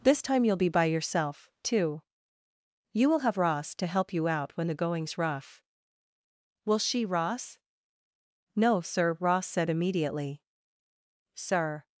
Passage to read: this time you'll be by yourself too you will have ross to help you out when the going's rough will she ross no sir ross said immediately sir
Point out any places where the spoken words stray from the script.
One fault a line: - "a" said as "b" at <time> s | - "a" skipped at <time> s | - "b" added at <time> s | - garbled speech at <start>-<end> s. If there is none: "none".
none